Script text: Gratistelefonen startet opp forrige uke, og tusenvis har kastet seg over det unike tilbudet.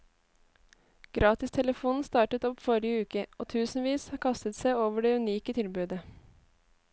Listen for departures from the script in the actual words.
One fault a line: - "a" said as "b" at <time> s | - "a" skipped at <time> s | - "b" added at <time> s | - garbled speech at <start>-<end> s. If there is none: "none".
none